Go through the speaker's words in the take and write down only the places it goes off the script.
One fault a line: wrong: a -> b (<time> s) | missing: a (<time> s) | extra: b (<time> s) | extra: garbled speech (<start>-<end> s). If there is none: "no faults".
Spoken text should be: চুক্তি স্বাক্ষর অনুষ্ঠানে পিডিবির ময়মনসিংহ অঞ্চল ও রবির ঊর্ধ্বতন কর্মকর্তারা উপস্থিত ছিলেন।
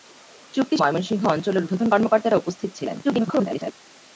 missing: স্বাক্ষর অনুষ্ঠানে পিডিবির (0.8 s)
missing: রবির (1.6 s)
extra: garbled speech (3.0-3.7 s)